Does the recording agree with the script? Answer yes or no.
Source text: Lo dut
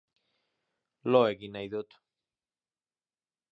no